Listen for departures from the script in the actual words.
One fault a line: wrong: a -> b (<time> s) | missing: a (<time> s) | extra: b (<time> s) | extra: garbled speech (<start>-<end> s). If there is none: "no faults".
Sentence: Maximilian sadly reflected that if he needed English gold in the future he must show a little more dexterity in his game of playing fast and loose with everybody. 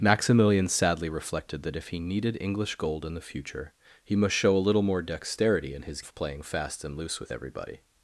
missing: game (6.0 s)